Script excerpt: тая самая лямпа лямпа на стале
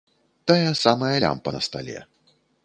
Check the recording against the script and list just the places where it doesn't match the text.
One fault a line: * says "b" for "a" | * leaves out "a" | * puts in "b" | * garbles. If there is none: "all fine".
* leaves out "лямпа"